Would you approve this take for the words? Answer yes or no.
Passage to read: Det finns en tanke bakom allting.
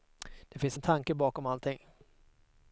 yes